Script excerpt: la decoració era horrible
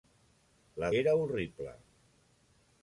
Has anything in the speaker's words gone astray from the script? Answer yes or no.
yes